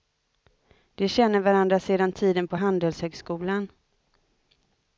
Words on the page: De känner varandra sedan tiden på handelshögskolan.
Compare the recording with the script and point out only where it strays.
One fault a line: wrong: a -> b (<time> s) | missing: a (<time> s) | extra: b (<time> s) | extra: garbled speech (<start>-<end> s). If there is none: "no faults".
no faults